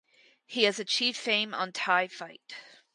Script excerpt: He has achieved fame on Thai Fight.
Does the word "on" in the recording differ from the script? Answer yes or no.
no